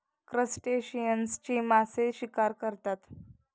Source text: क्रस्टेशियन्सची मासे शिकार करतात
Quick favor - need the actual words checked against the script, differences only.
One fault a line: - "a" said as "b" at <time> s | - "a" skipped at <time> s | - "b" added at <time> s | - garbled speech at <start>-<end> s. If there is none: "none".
none